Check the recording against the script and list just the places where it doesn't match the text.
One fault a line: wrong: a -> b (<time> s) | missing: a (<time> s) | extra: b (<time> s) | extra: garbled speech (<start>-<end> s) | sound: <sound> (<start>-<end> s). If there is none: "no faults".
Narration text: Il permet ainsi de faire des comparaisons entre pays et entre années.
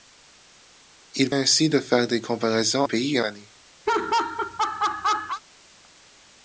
missing: permet (1.3 s)
missing: entre (2.8 s)
missing: entre (3.2 s)
sound: laugh (3.9-5.4 s)